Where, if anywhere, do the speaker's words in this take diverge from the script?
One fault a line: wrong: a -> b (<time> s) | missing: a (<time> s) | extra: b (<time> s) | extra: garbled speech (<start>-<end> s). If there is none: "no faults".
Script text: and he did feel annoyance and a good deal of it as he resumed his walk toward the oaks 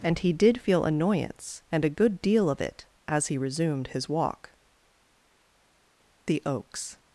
missing: toward (4.5 s)